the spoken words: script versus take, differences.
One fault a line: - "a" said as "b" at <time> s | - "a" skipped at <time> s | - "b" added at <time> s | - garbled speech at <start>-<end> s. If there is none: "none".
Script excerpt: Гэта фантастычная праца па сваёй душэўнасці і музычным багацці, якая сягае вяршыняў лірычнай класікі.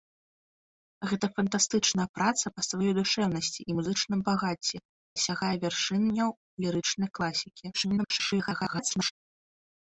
- "якая" skipped at 4.8 s
- garbled speech at 7.7-9.1 s